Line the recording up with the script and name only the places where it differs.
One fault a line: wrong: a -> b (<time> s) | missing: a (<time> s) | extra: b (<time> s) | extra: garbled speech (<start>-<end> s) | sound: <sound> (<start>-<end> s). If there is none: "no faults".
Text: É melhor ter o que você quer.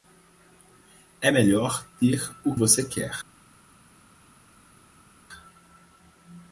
missing: que (2.6 s)